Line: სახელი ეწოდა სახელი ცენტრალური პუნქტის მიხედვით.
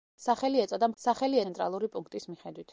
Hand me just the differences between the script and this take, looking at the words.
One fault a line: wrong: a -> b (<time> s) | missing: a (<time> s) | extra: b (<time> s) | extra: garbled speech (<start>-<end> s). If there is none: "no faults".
no faults